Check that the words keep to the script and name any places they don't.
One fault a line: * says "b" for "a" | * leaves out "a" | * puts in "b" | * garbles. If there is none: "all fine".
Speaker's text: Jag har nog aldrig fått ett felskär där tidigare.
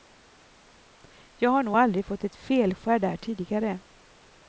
all fine